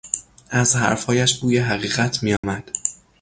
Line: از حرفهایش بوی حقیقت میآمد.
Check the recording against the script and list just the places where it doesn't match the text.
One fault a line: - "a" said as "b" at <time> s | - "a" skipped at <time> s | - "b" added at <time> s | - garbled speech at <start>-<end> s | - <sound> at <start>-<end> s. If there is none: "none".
- dropout at 2.4-2.4 s